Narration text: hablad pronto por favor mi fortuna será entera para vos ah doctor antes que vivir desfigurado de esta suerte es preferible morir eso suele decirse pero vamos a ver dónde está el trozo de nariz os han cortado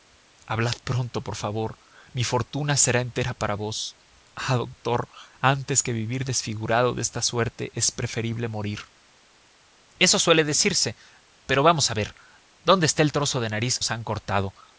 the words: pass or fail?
pass